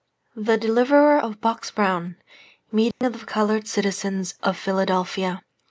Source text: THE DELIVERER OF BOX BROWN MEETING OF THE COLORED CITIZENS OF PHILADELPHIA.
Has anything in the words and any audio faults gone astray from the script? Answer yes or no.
yes